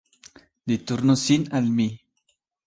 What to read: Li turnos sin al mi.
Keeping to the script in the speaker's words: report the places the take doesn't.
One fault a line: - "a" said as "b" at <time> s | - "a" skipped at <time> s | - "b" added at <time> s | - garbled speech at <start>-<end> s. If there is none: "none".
none